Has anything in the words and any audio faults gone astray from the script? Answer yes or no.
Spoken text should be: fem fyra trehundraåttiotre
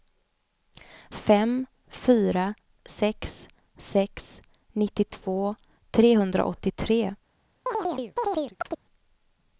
yes